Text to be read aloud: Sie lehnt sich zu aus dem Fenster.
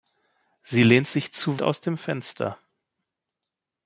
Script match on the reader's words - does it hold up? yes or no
yes